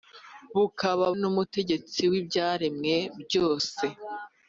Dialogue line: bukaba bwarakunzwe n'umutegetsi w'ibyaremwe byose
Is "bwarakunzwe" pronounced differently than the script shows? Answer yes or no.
yes